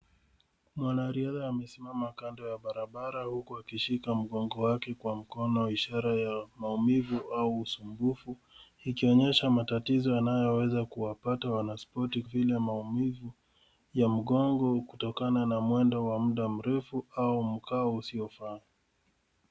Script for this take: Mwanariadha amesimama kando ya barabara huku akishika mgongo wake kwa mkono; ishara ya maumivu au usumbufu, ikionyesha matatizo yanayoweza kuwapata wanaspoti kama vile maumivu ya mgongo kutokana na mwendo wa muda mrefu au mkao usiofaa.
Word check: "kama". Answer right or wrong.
wrong